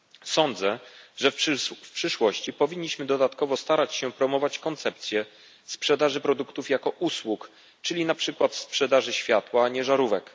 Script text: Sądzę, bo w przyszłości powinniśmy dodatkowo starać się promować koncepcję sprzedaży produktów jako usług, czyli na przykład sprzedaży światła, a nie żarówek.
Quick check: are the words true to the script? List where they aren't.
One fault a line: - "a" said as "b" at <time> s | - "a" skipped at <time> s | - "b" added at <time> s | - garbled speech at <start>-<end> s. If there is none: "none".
- "bo" said as "że" at 1.2 s